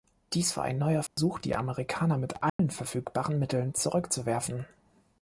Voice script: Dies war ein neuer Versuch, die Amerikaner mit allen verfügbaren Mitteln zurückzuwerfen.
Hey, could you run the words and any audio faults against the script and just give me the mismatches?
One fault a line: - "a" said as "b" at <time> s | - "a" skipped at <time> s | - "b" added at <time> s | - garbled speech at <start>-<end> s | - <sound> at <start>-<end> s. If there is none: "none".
- dropout at 1.1-1.2 s
- dropout at 2.5-2.6 s